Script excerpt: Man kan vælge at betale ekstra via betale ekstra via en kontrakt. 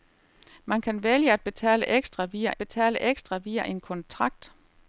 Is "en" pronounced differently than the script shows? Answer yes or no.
no